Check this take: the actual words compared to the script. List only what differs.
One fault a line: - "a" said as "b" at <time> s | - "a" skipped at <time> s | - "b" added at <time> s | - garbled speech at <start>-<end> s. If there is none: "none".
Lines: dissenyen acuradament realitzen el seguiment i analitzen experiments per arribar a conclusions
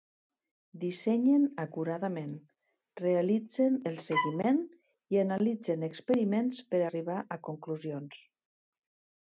none